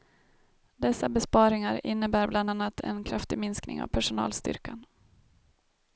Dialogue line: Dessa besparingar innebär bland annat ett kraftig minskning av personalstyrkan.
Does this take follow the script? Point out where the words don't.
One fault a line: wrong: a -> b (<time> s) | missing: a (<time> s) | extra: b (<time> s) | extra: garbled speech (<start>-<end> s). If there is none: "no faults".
wrong: ett -> en (2.8 s)